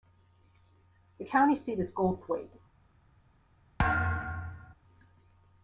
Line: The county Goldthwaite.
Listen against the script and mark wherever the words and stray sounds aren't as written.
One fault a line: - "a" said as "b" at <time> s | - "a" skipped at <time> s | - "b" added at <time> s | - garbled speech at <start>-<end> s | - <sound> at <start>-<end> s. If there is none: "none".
- "seat is" added at 1.6 s
- thud at 3.8-4.7 s